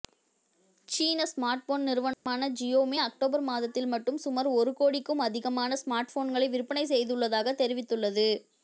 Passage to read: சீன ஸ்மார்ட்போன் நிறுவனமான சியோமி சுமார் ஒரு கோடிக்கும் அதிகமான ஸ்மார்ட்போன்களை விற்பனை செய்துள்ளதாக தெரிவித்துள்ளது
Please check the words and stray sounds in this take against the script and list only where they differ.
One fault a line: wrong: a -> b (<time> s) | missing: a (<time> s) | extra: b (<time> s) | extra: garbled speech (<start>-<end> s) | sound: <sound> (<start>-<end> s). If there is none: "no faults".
sound: dropout (2.1-2.3 s)
extra: அக்டோபர் மாதத்தில் மட்டும் (3.0 s)